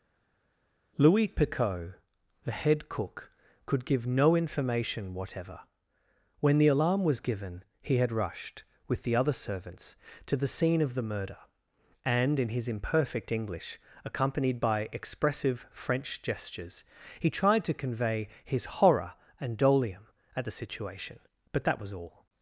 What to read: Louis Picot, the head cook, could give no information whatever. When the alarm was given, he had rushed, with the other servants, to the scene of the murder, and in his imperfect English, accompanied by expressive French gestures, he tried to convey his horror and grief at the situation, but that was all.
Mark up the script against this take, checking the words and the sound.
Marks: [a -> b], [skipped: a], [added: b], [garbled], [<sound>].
Louis Picot, the head cook, could give no information whatever. When the alarm was given, he had rushed, with the other servants, to the scene of the murder, and in his imperfect English, accompanied by expressive French gestures, he tried to convey his horror and [grief -> dolium] at the situation, but that was all.